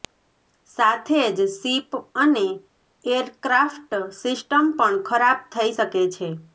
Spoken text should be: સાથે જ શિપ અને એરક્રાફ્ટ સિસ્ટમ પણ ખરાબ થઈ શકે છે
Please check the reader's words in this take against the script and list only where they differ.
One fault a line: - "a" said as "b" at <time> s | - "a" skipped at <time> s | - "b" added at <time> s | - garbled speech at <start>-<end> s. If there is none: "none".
none